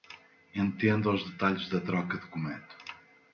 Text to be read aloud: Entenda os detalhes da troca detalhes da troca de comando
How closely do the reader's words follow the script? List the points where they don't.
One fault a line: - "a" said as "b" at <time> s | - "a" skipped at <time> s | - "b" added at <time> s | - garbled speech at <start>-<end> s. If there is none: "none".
- "detalhes da troca" skipped at 2.2 s